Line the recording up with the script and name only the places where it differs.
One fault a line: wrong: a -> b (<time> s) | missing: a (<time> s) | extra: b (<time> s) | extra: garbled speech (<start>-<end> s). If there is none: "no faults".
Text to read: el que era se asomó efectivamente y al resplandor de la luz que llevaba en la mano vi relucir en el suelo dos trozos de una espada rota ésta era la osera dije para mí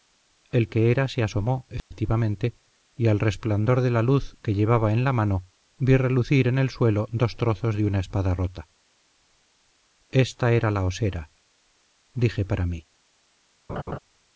no faults